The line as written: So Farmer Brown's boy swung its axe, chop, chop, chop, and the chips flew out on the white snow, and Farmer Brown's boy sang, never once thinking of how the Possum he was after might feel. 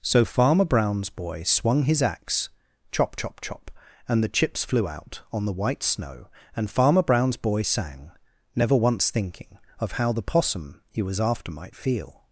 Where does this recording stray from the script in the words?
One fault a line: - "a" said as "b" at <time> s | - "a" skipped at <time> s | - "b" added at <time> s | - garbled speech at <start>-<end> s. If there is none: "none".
- "its" said as "his" at 1.8 s